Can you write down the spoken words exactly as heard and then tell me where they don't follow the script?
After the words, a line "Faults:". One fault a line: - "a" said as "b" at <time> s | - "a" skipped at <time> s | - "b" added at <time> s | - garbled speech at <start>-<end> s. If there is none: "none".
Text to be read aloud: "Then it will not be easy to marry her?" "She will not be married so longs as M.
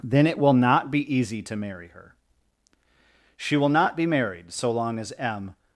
"Then it will not be easy to marry her?" "She will not be married so long as M.
Faults:
- "longs" said as "long" at 4.7 s